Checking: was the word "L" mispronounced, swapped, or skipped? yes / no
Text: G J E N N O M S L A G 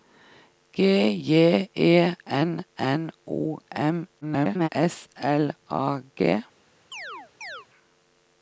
no